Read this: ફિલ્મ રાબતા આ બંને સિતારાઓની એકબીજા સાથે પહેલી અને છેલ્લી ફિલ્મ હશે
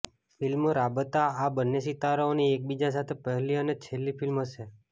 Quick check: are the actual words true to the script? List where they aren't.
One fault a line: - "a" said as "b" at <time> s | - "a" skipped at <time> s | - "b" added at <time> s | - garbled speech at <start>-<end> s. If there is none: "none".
none